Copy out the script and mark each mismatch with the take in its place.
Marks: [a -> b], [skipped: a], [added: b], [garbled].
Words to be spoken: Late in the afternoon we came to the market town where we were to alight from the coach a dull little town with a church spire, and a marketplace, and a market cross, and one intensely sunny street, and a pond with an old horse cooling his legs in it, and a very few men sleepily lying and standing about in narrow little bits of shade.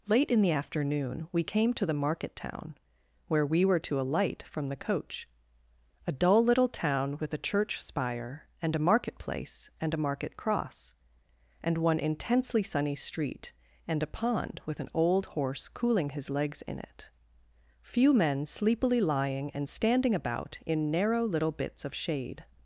Late in the afternoon we came to the market town where we were to alight from the coach a dull little town with a church spire, and a marketplace, and a market cross, and one intensely sunny street, and a pond with an old horse cooling his legs in it, [skipped: and a very] few men sleepily lying and standing about in narrow little bits of shade.